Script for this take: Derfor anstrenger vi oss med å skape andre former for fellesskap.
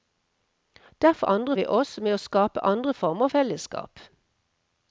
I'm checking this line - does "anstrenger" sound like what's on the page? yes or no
no